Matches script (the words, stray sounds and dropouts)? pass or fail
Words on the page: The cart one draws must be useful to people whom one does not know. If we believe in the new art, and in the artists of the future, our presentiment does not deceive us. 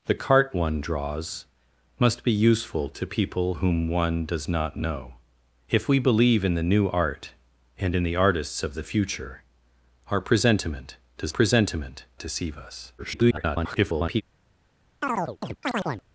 fail